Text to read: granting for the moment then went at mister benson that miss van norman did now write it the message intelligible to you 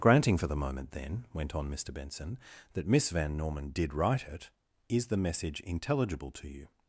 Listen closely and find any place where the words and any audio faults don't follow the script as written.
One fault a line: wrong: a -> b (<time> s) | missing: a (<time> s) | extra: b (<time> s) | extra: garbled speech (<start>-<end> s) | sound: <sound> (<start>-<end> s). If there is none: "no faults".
wrong: at -> on (1.5 s)
missing: now (3.9 s)
extra: is (4.9 s)